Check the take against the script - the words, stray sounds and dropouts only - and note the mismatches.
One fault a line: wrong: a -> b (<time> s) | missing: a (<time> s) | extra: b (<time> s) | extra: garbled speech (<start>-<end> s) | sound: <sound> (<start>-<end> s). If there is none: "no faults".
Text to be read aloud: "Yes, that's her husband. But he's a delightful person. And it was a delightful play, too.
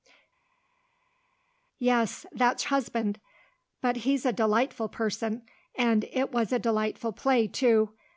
missing: her (2.6 s)